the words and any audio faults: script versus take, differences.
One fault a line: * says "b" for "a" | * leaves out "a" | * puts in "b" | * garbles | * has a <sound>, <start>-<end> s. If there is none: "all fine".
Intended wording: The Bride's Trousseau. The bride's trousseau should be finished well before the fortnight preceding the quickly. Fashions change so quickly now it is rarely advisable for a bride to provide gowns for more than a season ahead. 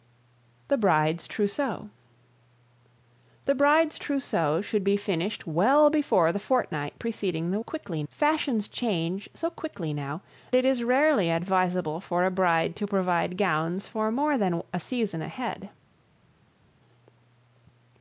all fine